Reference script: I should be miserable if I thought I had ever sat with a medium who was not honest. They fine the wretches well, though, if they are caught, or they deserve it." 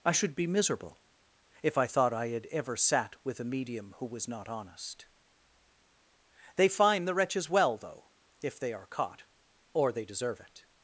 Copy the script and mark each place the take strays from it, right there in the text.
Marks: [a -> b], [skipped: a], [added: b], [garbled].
I should be miserable if I thought I had ever sat with a medium who was not honest. They fine the wretches well, though, if they are caught, or they deserve it."